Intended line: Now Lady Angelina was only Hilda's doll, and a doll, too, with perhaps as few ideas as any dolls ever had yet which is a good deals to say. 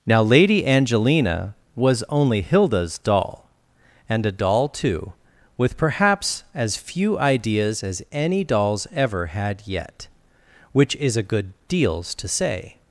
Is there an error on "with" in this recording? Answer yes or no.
no